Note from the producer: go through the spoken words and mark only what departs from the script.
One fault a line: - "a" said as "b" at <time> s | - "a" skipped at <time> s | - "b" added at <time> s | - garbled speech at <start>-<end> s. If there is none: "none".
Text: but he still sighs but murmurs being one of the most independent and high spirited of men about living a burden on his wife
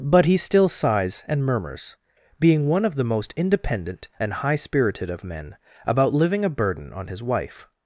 - "but" said as "and" at 1.3 s